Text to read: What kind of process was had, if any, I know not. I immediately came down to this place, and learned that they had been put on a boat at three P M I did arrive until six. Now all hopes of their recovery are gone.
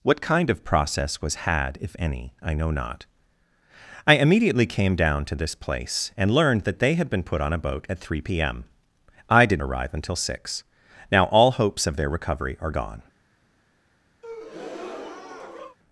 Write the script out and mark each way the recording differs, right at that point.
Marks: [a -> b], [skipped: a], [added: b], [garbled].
What kind of process was had, if any, I know not. I immediately came down to this place, and learned that they had been put on a boat at three P M I did arrive until six. Now all hopes of their recovery are gone.